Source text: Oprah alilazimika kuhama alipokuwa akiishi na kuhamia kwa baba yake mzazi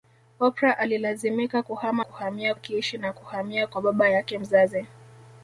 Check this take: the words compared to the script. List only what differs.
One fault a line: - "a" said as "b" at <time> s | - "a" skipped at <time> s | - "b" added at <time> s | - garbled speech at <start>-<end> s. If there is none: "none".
- "alipokuwa" said as "kuhamia" at 2.0 s